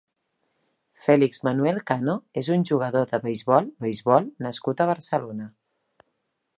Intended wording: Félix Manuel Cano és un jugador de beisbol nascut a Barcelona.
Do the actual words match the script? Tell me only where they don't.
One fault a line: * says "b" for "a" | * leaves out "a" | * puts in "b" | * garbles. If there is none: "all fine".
* puts in "beisbol"